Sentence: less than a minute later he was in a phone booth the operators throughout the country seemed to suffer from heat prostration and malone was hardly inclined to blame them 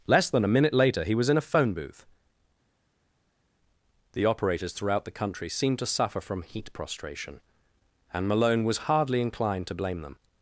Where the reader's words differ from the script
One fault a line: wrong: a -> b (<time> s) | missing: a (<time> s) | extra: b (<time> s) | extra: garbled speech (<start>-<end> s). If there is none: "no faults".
no faults